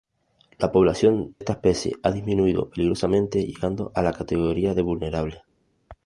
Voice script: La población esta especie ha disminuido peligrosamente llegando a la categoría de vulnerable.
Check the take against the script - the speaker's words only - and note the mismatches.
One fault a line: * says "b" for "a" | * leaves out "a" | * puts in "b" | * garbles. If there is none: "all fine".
all fine